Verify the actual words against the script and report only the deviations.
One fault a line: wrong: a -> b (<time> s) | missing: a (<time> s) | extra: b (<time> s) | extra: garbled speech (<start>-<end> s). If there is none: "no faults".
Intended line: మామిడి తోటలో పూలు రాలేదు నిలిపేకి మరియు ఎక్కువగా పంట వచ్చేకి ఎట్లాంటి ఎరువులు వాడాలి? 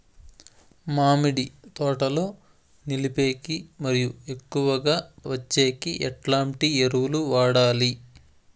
missing: పూలు రాలేదు (2.2 s)
missing: పంట (5.0 s)